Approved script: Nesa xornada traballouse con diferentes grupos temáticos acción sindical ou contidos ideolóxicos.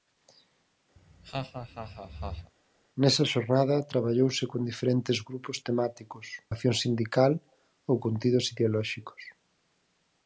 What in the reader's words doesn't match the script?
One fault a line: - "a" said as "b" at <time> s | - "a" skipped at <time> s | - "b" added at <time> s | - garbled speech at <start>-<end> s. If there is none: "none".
none